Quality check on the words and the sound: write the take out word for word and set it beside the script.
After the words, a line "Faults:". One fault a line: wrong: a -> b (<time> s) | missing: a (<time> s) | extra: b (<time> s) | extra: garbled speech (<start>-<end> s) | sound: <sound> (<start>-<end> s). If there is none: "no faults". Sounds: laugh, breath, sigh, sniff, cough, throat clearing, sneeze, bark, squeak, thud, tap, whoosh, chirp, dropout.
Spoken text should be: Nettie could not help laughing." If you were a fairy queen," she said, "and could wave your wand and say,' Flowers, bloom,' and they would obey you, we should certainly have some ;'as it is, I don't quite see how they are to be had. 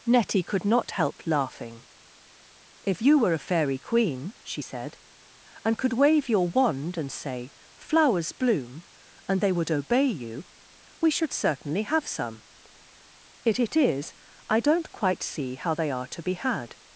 Nettie could not help laughing." If you were a fairy queen," she said, "and could wave your wand and say,' Flowers, bloom,' and they would obey you, we should certainly have some ;'it it is, I don't quite see how they are to be had.
Faults:
wrong: as -> it (13.4 s)